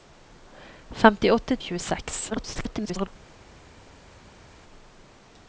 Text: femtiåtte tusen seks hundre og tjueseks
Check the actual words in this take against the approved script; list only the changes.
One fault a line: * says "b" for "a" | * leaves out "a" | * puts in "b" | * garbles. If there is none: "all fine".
* leaves out "tusen seks hundre"
* garbles